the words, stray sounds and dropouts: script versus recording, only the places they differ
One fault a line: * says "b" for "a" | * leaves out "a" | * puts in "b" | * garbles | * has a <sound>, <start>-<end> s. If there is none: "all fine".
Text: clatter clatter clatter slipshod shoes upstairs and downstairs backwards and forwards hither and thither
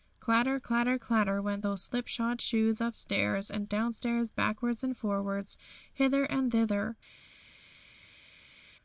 * puts in "went those"